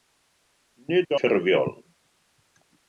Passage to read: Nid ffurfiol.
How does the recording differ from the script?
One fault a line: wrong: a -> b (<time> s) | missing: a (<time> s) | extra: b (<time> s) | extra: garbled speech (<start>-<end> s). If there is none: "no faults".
no faults